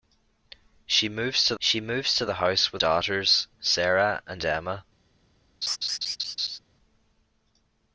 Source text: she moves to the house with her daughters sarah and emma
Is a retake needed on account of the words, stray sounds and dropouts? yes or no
yes